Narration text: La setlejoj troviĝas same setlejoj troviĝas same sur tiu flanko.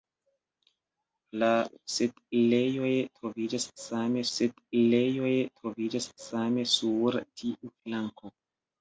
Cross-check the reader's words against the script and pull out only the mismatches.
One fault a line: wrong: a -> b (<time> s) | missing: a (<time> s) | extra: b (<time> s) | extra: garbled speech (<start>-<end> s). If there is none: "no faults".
no faults